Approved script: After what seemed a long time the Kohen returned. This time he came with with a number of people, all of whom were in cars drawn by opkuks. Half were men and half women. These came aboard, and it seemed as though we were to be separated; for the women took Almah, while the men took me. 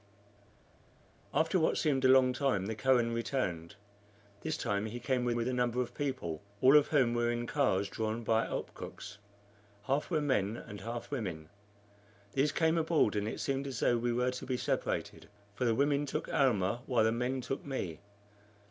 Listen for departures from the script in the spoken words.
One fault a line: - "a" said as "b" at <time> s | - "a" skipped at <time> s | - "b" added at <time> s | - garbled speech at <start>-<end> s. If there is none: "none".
none